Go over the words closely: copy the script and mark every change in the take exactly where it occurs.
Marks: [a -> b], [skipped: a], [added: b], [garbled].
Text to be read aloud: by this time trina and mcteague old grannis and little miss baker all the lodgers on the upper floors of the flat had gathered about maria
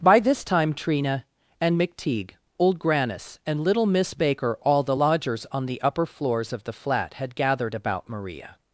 by this time trina and mcteague old grannis and little miss baker all the lodgers on the upper floors of the flat had gathered about maria